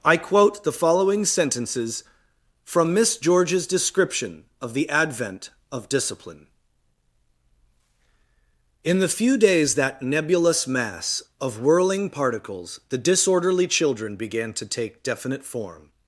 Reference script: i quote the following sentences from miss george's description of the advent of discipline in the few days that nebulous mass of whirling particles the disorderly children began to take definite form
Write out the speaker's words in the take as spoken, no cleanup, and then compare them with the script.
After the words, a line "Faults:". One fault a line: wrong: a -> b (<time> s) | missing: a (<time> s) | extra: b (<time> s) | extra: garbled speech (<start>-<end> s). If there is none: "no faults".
i quote the following sentences from miss george's description of the advent of discipline in the few days that nebulous mass of whirling particles the disorderly children began to take definite form
Faults:
no faults